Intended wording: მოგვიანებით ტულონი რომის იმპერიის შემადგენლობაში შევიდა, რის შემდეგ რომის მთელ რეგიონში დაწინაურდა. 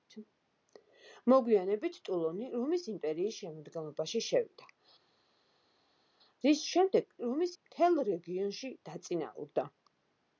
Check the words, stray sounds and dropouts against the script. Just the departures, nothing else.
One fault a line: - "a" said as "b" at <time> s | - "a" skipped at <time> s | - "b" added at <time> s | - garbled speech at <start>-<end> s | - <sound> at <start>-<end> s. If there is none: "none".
none